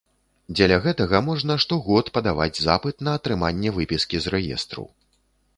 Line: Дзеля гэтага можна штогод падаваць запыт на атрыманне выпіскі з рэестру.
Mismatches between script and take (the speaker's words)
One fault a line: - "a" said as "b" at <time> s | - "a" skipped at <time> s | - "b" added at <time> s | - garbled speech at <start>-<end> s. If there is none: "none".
none